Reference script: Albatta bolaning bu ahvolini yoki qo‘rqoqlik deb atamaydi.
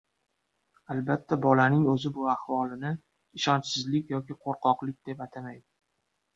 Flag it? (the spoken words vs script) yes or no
yes